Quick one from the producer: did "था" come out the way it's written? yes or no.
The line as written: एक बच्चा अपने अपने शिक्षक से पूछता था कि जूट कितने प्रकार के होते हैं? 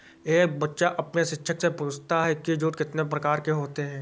no